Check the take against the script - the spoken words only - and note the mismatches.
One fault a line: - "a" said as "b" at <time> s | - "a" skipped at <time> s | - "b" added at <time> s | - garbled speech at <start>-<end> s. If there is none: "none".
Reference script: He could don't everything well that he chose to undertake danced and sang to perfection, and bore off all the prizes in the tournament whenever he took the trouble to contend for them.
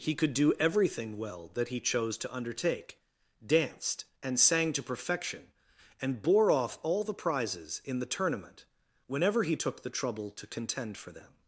- "don't" said as "do" at 0.3 s